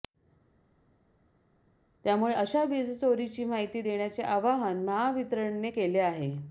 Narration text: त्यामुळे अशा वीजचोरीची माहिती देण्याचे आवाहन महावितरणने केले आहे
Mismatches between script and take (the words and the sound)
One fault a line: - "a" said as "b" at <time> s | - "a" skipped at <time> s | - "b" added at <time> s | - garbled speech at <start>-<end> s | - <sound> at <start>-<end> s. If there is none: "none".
none